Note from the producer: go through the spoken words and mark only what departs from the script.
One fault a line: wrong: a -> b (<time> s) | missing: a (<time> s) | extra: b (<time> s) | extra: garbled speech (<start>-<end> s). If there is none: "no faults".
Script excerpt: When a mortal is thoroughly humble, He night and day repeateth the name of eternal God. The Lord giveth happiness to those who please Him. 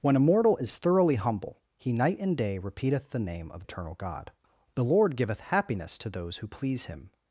no faults